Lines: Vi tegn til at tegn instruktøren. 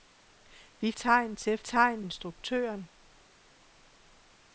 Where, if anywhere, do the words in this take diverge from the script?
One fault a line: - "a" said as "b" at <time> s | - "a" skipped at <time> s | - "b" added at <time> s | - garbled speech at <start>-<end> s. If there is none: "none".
none